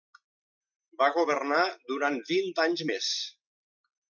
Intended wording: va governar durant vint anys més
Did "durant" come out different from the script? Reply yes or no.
no